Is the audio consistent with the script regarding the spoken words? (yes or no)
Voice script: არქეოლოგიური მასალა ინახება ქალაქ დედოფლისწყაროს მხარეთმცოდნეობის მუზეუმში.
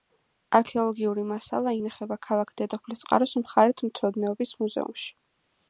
yes